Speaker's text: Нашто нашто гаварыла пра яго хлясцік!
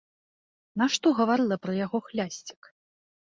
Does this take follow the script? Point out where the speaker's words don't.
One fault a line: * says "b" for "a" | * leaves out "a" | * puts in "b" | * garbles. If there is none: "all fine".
* leaves out "нашто"